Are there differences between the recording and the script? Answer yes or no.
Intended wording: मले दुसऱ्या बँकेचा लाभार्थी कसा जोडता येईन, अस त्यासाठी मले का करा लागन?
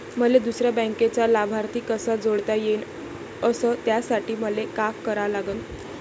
no